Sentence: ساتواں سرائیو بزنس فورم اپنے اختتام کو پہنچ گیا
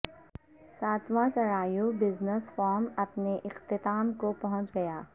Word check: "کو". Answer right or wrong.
right